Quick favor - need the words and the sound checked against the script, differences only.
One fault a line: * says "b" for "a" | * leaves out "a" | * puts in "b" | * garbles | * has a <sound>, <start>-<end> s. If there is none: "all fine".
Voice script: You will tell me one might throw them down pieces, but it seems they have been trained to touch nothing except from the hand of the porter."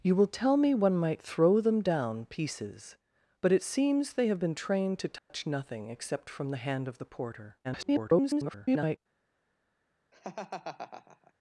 * has a dropout, 5.2-5.3 s
* garbles
* has a laugh, 10.1-11.3 s